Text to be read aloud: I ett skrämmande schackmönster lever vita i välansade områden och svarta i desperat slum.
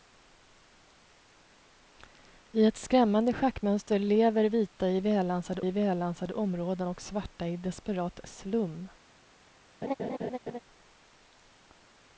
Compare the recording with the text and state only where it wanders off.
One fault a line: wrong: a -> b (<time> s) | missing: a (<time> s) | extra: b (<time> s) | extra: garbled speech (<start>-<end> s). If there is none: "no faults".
extra: i välansade (5.6 s)